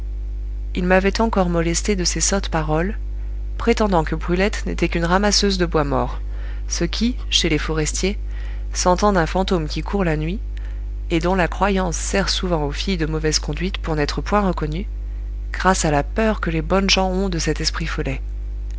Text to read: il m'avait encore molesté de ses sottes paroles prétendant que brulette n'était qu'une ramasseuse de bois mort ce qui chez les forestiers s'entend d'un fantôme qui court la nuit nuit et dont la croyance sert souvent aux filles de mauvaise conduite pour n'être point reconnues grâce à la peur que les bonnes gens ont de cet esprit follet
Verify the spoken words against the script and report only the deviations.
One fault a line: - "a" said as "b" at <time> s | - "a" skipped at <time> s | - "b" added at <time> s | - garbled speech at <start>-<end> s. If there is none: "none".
- "nuit" skipped at 10.4 s